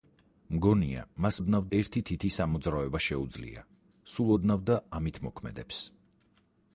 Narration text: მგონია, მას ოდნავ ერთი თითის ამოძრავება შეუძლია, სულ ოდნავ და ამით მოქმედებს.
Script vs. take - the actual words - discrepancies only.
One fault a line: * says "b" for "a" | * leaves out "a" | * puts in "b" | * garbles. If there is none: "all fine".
all fine